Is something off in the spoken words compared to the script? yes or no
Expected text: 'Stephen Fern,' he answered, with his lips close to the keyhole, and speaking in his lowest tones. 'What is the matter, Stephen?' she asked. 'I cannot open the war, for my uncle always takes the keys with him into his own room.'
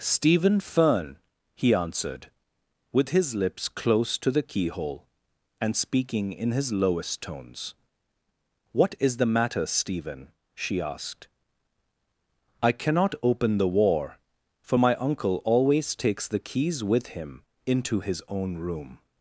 no